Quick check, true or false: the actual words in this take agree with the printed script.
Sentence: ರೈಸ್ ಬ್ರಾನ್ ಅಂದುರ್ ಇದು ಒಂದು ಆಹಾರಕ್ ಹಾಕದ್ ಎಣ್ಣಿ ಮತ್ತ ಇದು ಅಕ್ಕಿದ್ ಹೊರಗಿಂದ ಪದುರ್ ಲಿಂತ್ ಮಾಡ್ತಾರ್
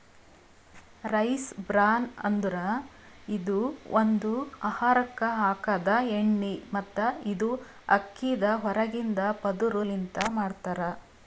true